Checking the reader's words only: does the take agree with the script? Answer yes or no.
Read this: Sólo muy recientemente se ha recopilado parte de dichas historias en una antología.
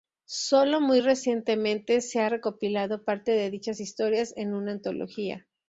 yes